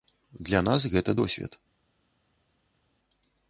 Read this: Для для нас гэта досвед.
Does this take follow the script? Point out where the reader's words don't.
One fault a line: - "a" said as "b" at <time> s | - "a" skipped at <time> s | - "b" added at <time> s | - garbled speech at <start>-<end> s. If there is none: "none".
- "для" skipped at 0.6 s